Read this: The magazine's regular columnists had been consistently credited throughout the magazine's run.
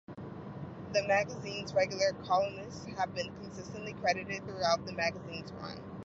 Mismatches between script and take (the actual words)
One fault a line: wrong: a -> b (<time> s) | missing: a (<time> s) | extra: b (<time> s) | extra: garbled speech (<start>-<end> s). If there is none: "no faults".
wrong: had -> have (2.9 s)